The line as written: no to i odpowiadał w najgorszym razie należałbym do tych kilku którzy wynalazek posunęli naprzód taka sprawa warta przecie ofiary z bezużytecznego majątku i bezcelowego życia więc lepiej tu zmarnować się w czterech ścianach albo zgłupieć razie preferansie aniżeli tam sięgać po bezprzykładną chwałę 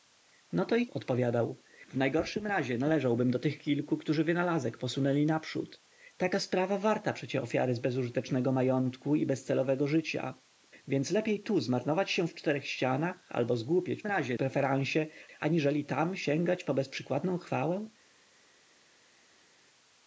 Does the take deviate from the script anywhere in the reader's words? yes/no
no